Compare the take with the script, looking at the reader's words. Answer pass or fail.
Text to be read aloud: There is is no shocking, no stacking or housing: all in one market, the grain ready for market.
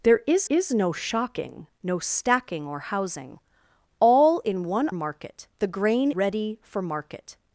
pass